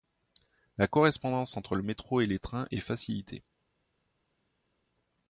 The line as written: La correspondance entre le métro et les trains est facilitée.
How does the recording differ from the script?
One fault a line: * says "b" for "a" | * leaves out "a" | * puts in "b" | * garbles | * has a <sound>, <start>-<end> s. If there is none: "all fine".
all fine